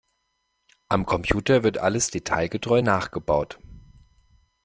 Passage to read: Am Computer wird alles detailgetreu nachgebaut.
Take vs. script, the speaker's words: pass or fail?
pass